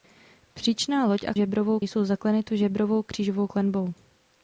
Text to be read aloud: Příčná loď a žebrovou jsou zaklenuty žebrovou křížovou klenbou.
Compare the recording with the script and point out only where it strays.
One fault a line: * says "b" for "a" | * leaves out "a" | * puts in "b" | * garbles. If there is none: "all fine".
all fine